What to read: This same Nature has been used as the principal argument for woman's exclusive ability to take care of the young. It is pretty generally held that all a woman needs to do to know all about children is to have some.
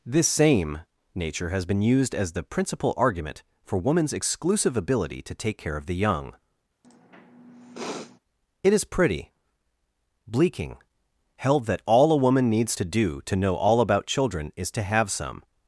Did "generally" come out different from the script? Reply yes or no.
yes